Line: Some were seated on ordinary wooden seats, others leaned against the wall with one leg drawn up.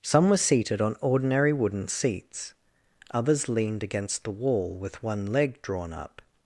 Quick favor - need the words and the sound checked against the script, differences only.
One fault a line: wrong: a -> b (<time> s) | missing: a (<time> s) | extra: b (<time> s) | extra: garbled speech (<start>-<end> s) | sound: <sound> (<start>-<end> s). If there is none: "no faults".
no faults